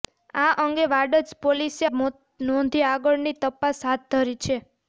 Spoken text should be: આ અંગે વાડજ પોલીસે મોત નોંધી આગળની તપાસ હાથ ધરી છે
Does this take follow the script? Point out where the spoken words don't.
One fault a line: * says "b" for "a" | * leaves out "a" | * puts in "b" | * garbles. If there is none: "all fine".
all fine